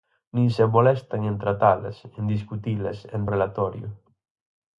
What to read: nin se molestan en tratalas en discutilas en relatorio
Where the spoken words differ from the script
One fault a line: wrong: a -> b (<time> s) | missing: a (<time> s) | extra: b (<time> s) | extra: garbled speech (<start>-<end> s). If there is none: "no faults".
no faults